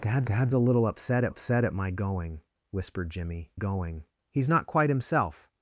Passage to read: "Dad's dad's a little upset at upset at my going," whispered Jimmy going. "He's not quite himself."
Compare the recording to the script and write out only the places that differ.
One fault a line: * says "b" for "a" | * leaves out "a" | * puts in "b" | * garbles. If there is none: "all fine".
all fine